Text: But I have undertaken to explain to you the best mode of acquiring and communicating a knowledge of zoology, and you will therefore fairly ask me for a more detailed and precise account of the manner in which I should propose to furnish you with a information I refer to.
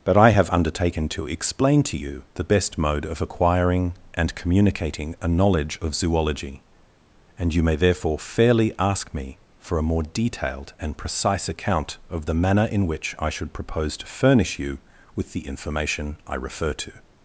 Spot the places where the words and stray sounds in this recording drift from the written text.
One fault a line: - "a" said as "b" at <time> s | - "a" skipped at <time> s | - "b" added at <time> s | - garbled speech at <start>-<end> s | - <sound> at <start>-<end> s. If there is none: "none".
- "will" said as "may" at 7.6 s
- "a" said as "the" at 15.3 s